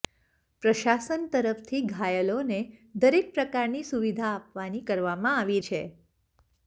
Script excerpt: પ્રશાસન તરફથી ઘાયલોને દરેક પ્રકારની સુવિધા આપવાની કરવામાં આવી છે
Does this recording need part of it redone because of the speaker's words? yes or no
no